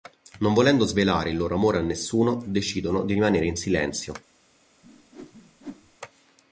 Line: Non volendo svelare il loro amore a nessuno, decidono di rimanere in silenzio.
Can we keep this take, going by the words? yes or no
yes